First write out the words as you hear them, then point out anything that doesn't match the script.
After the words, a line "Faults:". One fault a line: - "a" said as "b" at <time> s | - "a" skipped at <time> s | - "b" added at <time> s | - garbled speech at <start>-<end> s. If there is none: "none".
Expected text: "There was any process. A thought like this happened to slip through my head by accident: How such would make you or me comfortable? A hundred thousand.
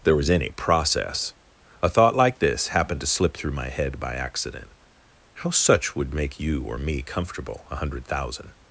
"There was any process. A thought like this happened to slip through my head by accident: How such would make you or me comfortable? A hundred thousand.
Faults:
none